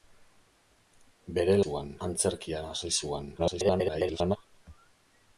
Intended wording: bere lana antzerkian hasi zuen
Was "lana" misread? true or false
true